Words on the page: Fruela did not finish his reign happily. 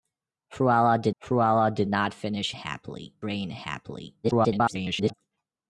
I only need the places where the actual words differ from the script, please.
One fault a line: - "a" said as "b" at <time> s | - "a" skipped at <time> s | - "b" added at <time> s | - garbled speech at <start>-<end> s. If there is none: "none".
- "fruela did" added at 1.2 s
- "his" said as "happily" at 2.5 s
- garbled speech at 4.2-5.1 s